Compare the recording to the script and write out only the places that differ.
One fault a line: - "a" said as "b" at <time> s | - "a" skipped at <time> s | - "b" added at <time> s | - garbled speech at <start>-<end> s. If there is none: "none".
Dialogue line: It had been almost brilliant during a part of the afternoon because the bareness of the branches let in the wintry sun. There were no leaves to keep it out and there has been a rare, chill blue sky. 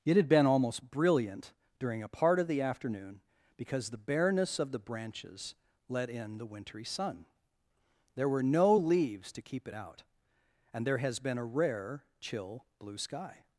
none